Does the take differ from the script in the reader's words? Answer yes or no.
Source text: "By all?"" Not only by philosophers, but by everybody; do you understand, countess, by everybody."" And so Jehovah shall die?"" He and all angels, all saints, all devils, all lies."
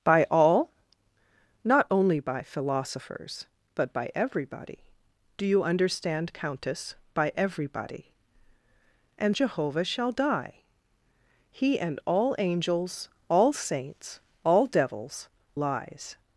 yes